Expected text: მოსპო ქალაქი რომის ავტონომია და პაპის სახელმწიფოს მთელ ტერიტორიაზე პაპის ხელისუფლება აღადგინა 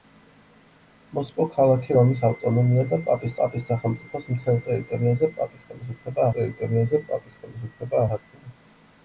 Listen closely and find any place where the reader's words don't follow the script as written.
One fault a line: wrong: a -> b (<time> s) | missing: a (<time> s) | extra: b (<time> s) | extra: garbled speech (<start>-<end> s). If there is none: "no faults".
extra: პაპის (3.4 s)
extra: ტერიტორიაზე პაპის ხელისუფლება (6.4 s)